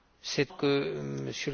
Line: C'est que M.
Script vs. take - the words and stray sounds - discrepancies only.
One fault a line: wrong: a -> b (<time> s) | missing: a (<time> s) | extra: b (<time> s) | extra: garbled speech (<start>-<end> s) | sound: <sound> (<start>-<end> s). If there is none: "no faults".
no faults